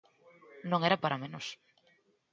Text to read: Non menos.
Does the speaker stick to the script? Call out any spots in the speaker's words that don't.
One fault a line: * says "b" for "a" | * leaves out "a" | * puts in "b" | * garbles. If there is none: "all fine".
* puts in "era para"